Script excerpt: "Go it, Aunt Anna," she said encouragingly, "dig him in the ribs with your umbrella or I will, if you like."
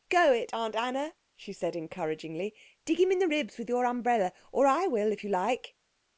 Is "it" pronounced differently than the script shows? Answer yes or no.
no